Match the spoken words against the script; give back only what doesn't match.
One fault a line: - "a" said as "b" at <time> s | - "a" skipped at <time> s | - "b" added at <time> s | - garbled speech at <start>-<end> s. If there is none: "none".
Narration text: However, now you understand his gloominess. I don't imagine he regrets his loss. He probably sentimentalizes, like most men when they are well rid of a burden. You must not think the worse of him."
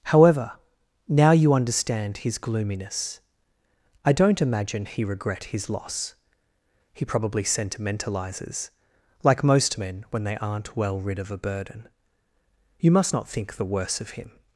- "regrets" said as "regret" at 5.0 s
- "are" said as "aren't" at 10.4 s